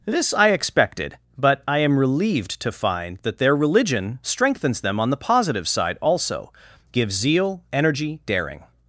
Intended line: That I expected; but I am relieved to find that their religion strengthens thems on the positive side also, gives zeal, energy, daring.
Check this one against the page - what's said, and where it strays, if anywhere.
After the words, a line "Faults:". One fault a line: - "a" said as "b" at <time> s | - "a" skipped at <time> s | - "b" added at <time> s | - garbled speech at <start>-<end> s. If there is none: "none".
This I expected; but I am relieved to find that their religion strengthens them on the positive side also, gives zeal, energy, daring.
Faults:
- "That" said as "This" at 0.1 s
- "thems" said as "them" at 4.8 s